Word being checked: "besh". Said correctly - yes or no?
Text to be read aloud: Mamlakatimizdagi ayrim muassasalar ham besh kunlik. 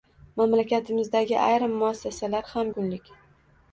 no